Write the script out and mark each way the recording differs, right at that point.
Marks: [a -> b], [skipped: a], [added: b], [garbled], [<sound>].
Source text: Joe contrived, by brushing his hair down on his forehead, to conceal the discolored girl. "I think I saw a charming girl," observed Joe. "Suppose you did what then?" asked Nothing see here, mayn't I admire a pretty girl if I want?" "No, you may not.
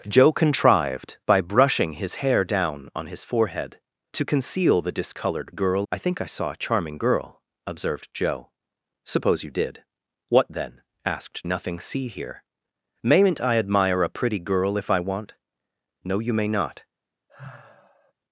Joe contrived, by brushing his hair down on his forehead, to conceal the discolored girl. "I think I saw a charming girl," observed Joe. "Suppose you did what then?" asked Nothing see here, mayn't I admire a pretty girl if I want?" "No, you may not. [sigh]